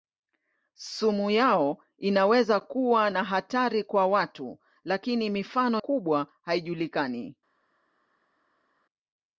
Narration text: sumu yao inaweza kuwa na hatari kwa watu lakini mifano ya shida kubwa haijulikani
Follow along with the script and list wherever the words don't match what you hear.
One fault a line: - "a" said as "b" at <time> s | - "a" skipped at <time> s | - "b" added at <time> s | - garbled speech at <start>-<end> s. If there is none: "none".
- "ya shida" skipped at 5.8 s